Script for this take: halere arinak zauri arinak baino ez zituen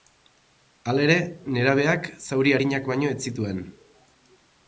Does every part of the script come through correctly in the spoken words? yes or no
no